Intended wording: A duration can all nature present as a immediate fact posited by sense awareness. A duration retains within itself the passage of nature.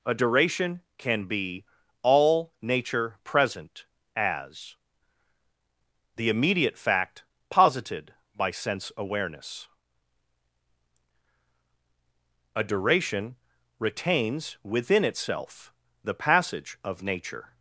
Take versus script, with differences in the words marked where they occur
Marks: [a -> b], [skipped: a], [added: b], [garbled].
A duration can [added: be] all nature present as [a -> the] immediate fact posited by sense awareness. A duration retains within itself the passage of nature.